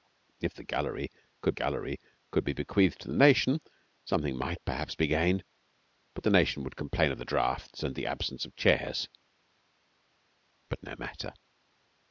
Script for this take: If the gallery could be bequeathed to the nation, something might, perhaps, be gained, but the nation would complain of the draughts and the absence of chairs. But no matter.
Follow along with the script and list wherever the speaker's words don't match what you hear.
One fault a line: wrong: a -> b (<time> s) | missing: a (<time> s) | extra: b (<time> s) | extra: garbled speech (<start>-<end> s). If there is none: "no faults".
extra: gallery could (1.5 s)